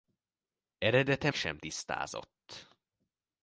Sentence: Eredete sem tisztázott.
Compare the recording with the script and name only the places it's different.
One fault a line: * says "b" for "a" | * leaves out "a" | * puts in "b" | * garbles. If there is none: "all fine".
all fine